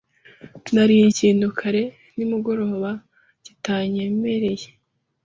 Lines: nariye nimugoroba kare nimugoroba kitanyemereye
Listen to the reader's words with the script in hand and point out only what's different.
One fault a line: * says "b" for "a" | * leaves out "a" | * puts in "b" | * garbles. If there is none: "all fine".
* says "ikintu" for "nimugoroba"